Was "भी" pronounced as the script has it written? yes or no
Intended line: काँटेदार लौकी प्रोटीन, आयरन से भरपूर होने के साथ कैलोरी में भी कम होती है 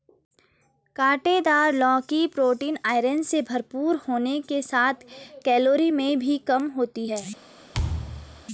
yes